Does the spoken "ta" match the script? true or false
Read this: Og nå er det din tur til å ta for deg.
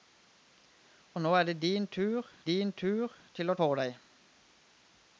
false